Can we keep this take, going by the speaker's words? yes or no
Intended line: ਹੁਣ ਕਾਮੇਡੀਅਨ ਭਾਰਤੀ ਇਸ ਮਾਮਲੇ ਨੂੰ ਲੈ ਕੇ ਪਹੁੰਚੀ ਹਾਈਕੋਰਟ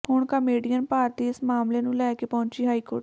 yes